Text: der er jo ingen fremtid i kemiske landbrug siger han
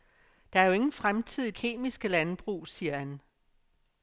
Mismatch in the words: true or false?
false